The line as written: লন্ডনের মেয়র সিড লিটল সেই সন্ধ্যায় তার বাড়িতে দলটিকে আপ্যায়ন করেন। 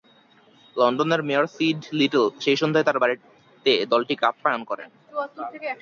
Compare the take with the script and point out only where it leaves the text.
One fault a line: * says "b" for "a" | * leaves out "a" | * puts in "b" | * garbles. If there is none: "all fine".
all fine